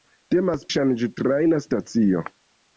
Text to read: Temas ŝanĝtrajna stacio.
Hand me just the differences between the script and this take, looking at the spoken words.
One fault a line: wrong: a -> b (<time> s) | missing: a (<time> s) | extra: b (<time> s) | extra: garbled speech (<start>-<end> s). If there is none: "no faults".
no faults